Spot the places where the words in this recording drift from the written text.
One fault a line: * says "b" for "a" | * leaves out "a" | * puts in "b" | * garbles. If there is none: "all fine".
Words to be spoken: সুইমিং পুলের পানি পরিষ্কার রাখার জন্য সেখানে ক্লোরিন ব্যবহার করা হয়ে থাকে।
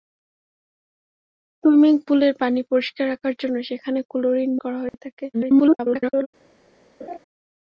* leaves out "ব্যবহার"
* garbles